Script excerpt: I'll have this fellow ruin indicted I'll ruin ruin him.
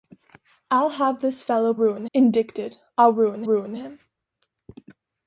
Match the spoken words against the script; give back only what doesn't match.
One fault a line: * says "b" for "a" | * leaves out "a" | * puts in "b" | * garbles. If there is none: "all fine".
all fine